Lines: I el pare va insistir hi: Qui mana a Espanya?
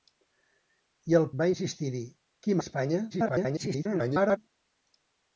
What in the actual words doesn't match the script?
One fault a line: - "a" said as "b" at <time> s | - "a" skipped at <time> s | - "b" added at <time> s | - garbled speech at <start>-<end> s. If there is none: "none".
- "pare" skipped at 1.3 s
- "mana" skipped at 2.6 s
- garbled speech at 3.1-4.4 s